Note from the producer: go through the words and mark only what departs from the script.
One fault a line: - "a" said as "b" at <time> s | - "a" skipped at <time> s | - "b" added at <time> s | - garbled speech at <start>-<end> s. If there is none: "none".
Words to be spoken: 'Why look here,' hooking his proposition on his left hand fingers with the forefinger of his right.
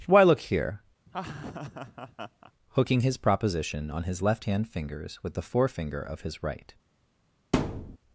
none